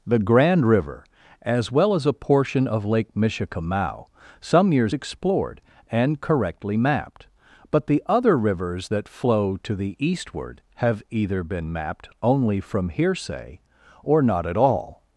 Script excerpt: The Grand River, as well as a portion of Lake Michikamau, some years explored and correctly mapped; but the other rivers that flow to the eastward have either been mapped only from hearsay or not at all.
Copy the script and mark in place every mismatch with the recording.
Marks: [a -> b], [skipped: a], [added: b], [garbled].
The Grand River, as well as a portion of Lake Michikamau, some years explored and correctly mapped; but the other rivers that flow to the eastward have either been mapped only from hearsay or not at all.